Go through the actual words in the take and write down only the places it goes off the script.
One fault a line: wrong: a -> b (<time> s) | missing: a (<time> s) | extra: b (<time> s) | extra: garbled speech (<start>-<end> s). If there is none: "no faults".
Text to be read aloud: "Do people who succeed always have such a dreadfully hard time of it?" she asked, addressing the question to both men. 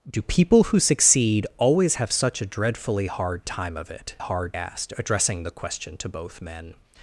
wrong: she -> hard (4.2 s)